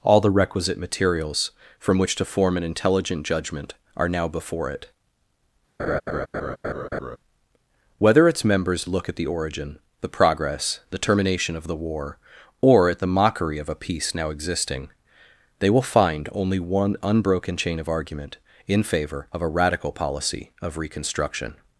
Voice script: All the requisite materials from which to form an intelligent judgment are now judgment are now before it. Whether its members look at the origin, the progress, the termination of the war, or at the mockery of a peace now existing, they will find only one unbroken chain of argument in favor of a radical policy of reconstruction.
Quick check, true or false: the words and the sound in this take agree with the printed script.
false